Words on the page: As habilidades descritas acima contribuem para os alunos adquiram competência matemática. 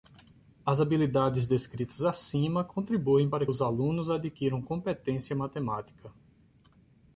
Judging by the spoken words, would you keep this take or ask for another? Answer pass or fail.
pass